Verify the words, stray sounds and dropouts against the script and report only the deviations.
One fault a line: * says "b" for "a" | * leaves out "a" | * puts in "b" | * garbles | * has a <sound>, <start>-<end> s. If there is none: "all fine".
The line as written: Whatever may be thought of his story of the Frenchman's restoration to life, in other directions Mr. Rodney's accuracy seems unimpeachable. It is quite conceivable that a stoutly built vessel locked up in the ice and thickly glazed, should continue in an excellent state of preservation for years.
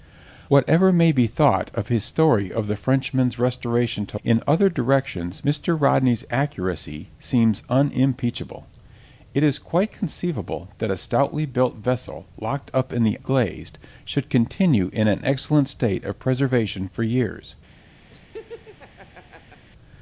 * leaves out "life"
* leaves out "ice and thickly"
* has a laugh, 18.1-19.6 s